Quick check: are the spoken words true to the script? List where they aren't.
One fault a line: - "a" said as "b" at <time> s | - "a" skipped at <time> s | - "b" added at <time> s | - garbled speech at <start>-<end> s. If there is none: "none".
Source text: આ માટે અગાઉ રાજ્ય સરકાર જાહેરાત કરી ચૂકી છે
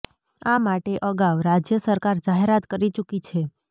none